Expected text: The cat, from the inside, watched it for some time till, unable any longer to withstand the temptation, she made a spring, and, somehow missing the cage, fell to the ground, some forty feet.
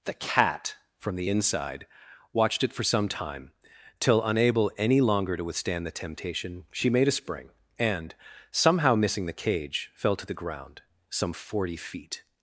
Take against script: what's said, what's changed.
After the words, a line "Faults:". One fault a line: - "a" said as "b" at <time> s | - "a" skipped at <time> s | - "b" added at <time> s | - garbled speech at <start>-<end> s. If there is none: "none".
The cat, from the inside, watched it for some time till, unable any longer to withstand the temptation, she made a spring, and, somehow missing the cage, fell to the ground, some forty feet.
Faults:
none